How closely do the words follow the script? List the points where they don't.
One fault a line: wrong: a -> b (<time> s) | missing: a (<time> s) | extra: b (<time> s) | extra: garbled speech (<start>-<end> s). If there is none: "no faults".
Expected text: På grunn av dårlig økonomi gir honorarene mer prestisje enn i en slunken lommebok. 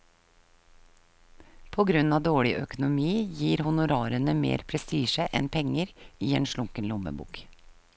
extra: penger (5.6 s)